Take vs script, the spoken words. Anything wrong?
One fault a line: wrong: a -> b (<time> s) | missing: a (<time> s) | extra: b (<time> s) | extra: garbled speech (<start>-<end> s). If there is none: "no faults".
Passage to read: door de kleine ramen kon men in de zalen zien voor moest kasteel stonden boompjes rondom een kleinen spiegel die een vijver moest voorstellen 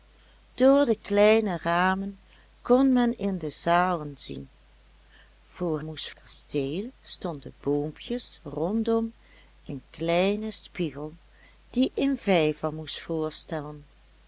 no faults